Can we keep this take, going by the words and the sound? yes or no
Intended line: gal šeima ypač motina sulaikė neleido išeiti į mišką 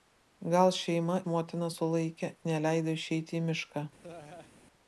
no